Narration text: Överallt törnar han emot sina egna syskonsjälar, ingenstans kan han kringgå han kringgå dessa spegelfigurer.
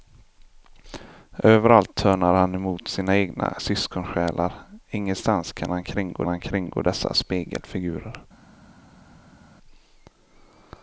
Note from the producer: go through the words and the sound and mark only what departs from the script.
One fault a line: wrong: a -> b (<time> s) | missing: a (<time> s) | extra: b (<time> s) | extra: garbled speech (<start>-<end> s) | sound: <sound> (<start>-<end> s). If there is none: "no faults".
no faults